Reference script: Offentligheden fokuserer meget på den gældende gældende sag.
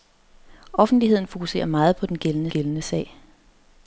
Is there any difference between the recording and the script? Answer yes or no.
no